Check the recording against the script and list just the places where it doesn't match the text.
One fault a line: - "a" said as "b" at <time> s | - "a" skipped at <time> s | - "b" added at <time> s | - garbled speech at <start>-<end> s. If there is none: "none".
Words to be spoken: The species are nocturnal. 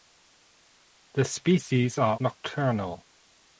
none